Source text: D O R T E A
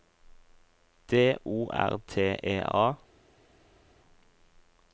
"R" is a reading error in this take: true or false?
false